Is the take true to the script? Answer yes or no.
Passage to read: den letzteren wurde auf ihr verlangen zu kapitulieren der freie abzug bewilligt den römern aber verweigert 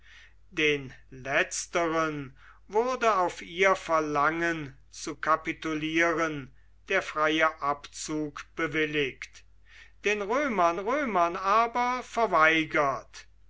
no